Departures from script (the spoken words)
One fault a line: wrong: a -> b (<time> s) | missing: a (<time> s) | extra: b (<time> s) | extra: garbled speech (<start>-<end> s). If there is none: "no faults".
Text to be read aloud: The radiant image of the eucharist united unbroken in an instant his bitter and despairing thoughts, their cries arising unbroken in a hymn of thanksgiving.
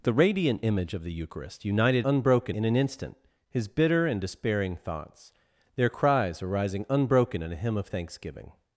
no faults